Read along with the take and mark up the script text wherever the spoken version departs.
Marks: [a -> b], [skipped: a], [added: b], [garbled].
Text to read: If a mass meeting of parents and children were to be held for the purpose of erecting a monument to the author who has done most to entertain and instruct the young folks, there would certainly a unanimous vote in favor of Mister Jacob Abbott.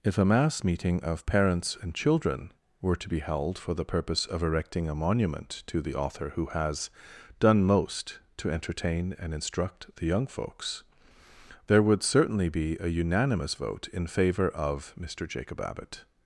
If a mass meeting of parents and children were to be held for the purpose of erecting a monument to the author who has done most to entertain and instruct the young folks, there would certainly [added: be] a unanimous vote in favor of Mister Jacob Abbott.